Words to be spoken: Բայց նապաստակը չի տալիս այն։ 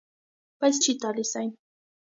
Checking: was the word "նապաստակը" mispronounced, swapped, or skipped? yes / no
yes